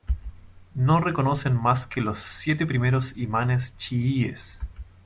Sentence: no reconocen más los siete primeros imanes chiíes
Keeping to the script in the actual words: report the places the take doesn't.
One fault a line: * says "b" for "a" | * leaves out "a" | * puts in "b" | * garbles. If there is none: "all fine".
* puts in "que"